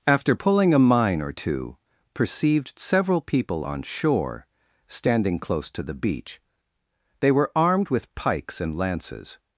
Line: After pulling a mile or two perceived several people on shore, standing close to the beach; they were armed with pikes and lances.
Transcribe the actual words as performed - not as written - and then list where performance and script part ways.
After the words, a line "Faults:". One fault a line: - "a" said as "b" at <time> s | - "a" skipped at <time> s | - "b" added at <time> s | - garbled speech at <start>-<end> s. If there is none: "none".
After pulling a mine or two perceived several people on shore, standing close to the beach; they were armed with pikes and lances.
Faults:
- "mile" said as "mine" at 0.8 s